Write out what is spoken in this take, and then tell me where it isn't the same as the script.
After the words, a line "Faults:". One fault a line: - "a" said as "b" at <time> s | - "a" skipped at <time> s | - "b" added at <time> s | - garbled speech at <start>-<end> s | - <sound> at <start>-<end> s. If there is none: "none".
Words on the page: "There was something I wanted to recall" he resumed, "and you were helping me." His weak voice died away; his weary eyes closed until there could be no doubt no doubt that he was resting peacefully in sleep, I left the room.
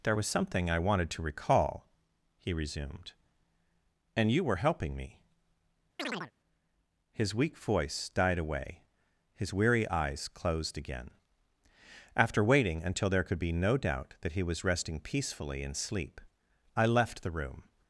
"There was something I wanted to recall" he resumed, "and you were helping me." His weak voice died away; his weary eyes closed again. After waiting until there could be no doubt that he was resting peacefully in sleep, I left the room.
Faults:
- chirp at 6.0-6.3 s
- "again After waiting" added at 10.8 s
- "no doubt" skipped at 14.1 s